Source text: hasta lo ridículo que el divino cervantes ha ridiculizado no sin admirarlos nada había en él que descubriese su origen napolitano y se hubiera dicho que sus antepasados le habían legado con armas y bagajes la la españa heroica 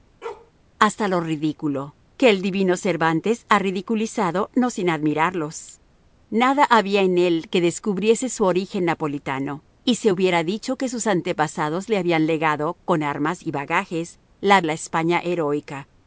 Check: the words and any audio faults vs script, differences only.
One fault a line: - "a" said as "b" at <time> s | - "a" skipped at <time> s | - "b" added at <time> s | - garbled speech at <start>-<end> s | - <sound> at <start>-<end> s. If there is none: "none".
- bark at 0.2-0.5 s